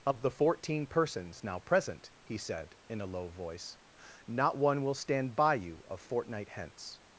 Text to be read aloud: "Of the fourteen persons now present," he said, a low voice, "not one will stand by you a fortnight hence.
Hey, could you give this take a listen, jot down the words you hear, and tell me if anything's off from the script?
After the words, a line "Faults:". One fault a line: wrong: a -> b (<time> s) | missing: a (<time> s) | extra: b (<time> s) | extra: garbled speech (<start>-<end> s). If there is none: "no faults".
"Of the fourteen persons now present," he said, in a low voice, "not one will stand by you a fortnight hence.
Faults:
extra: in (2.9 s)